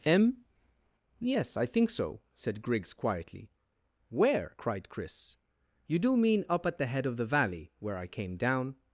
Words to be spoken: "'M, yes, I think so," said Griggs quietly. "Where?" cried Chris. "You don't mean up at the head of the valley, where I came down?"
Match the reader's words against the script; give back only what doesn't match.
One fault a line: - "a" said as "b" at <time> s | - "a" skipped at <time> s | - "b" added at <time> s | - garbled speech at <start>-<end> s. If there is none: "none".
- "don't" said as "do" at 6.0 s